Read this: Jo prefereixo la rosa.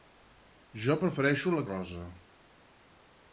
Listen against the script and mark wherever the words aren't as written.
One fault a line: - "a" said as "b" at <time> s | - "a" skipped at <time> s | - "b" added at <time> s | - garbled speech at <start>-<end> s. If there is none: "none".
none